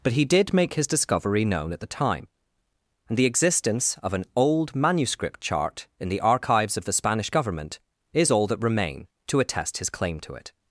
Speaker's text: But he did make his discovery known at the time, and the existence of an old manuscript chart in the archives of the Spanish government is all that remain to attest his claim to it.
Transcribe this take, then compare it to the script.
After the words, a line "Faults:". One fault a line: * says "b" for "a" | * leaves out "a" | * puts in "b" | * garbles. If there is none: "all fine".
But he did make his discovery known at the time, and the existence of an old manuscript chart in the archives of the Spanish government is all that remain to attest his claim to it.
Faults:
all fine